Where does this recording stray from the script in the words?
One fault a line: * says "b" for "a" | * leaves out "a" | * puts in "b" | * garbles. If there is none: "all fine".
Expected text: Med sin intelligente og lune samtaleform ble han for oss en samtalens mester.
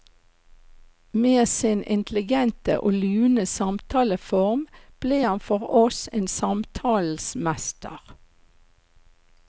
all fine